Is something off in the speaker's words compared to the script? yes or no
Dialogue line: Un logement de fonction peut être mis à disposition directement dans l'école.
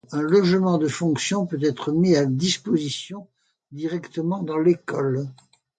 no